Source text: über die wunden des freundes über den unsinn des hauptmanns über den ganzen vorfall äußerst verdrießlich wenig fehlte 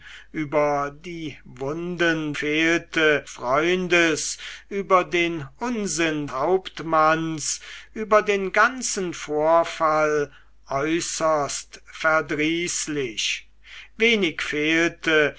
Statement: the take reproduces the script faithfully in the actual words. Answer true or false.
false